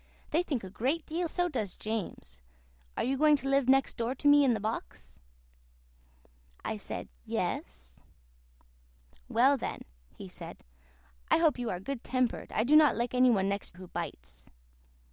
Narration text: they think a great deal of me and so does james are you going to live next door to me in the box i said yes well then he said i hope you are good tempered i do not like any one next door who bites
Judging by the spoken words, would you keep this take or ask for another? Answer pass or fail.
fail